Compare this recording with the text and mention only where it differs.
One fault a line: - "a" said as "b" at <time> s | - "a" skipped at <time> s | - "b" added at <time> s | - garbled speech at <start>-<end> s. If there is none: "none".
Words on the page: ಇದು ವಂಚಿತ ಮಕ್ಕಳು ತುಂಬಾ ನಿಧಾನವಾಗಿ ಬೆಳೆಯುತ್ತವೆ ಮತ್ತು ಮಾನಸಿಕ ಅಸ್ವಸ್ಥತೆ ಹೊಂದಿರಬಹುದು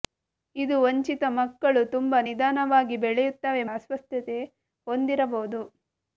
- "ಮತ್ತು ಮಾನಸಿಕ" skipped at 3.6 s